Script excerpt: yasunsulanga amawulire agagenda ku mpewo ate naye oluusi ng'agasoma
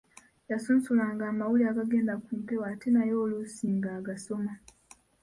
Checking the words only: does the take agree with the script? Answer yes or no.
yes